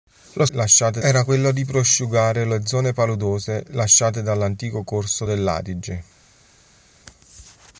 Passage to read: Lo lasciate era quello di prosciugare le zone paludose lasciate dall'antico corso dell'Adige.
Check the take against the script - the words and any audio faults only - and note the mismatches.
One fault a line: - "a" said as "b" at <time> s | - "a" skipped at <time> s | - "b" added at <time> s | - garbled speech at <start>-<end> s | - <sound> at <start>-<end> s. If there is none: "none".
none